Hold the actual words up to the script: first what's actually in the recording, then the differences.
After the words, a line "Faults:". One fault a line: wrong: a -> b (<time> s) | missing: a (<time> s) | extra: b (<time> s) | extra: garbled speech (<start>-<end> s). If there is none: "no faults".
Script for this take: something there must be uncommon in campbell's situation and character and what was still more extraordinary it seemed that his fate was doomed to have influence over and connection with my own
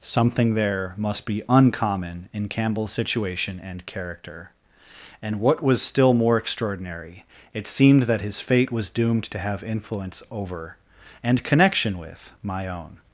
something there must be uncommon in campbell's situation and character and what was still more extraordinary it seemed that his fate was doomed to have influence over and connection with my own
Faults:
no faults